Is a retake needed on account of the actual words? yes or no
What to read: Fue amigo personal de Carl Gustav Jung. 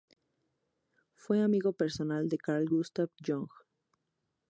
no